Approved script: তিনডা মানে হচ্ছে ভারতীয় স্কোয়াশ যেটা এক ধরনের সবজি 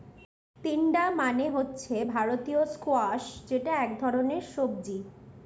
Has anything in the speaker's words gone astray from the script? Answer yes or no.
no